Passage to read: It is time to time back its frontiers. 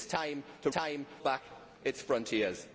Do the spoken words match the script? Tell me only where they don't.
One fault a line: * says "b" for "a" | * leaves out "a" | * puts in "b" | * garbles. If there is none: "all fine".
all fine